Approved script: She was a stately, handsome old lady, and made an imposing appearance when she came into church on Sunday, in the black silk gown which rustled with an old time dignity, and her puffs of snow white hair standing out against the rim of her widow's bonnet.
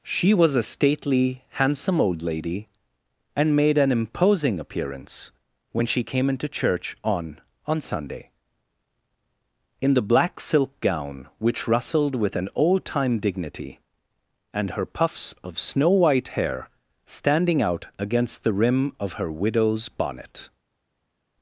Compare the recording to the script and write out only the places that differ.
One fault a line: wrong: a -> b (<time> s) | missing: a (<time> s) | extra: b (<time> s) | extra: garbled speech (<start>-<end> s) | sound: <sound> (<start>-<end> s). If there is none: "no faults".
extra: on (7.7 s)